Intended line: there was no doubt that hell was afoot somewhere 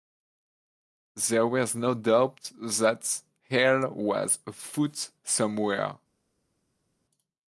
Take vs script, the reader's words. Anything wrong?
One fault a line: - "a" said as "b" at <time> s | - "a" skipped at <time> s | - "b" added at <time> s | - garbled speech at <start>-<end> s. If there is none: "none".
none